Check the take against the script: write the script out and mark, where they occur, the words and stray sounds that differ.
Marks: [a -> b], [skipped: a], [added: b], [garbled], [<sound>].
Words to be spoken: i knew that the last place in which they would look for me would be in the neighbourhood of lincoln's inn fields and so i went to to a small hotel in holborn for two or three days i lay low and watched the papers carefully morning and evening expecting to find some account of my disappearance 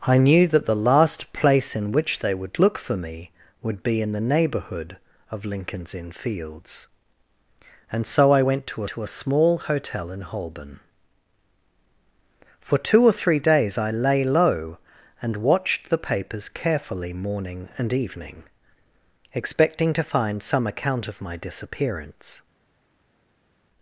i knew that the last place in which they would look for me would be in the neighbourhood of lincoln's inn fields and so i went to to a small hotel in holborn for two or three days i lay low and watched the papers carefully morning and evening expecting to find some account of my disappearance